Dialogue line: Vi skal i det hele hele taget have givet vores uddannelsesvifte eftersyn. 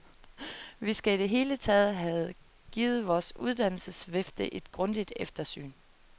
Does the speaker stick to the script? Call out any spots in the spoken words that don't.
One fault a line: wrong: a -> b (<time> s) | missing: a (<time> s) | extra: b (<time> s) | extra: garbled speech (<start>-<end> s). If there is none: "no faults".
missing: hele (1.6 s)
extra: et grundigt (4.5 s)